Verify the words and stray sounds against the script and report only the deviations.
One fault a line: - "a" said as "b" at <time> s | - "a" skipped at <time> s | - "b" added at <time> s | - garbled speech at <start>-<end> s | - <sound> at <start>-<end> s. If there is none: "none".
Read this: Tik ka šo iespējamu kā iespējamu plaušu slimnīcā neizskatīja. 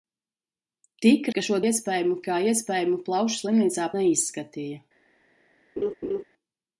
- laugh at 5.8-6.2 s